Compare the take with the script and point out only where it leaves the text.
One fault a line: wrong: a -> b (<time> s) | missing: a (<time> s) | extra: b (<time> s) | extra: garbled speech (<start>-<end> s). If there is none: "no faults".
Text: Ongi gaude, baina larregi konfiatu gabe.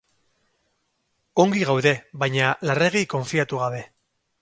no faults